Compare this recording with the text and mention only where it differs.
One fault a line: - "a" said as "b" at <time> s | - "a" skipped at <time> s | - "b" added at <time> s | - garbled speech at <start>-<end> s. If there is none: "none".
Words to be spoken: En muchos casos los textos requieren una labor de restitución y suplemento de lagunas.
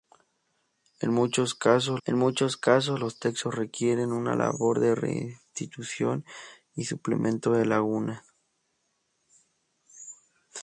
- "en muchos casos" added at 2.0 s